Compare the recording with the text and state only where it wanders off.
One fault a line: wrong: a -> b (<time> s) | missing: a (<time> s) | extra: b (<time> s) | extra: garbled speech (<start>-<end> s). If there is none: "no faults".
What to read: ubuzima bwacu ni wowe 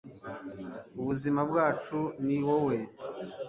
no faults